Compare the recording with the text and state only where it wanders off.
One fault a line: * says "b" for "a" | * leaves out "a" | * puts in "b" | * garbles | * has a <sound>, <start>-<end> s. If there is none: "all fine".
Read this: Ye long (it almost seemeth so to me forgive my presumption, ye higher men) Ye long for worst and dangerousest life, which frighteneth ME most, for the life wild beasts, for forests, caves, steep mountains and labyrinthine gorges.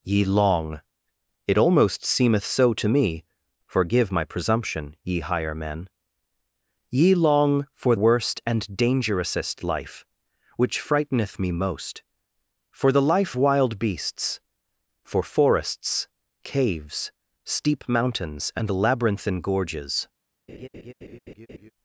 * has a laugh, 20.5-21.7 s